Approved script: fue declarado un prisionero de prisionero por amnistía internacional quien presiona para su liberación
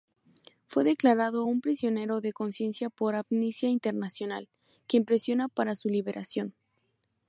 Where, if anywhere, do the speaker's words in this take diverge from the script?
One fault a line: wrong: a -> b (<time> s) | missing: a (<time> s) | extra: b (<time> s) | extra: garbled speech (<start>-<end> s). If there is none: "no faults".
wrong: prisionero -> conciencia (2.3 s)